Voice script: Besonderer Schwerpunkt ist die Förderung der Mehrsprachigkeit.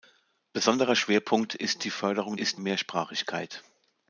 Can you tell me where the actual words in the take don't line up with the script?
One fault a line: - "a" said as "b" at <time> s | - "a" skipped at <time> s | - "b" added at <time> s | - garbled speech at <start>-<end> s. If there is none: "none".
- "der" said as "ist" at 2.3 s